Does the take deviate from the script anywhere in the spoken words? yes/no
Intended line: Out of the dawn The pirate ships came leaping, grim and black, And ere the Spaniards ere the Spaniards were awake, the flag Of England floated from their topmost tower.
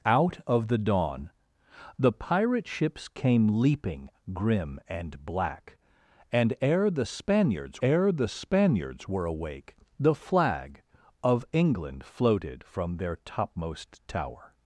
no